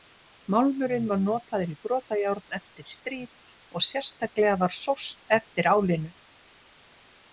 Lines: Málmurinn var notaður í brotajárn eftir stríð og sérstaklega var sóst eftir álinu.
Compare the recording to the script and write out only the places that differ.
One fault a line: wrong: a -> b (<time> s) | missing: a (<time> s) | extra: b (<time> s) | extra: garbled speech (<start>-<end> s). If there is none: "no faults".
no faults